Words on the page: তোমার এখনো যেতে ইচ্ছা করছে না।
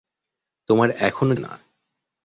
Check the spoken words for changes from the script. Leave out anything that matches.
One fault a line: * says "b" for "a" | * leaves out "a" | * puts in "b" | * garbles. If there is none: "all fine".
* leaves out "যেতে ইচ্ছা করছে"